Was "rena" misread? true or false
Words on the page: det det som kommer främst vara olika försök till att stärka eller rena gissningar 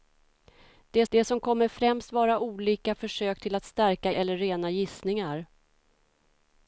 false